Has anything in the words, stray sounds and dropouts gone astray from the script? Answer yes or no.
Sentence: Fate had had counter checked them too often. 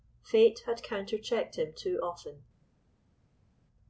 yes